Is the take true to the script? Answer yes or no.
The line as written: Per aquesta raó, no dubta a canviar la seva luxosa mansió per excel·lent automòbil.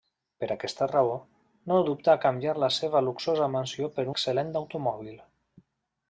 yes